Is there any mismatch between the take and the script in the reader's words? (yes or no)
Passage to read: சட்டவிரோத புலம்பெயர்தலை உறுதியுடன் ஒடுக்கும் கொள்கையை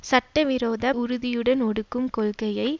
yes